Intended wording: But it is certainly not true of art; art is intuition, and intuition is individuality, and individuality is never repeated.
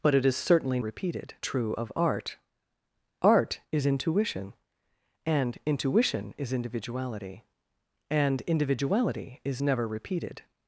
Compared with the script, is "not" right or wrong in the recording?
wrong